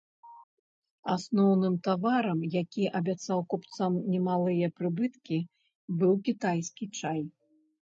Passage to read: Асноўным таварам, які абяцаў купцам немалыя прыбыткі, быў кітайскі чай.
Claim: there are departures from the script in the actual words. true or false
false